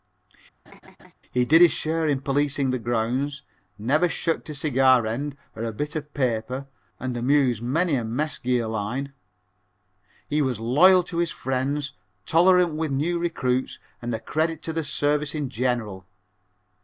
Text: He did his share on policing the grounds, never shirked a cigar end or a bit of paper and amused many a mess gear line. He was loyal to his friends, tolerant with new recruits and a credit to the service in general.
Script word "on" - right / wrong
wrong